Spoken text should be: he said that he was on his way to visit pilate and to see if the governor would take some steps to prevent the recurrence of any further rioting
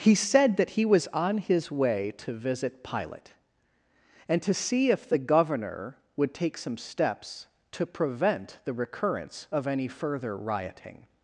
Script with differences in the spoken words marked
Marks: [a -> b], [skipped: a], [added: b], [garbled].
he said that he was on his way to visit pilate and to see if the governor would take some steps to prevent the recurrence of any further rioting